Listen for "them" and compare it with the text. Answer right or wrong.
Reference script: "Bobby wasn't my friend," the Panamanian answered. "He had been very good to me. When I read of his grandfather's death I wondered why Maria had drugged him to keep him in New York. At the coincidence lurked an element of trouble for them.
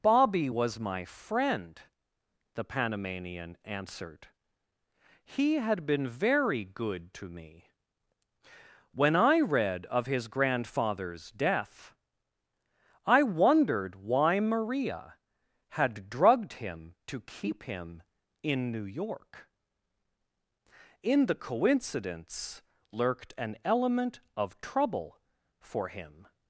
wrong